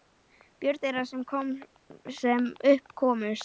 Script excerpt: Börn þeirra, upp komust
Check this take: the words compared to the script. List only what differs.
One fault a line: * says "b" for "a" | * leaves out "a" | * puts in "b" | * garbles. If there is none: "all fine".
* puts in "sem"